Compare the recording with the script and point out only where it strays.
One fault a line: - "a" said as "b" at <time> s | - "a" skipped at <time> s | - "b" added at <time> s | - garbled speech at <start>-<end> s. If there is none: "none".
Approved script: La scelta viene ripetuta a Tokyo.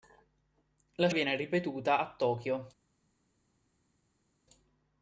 - "scelta" skipped at 1.1 s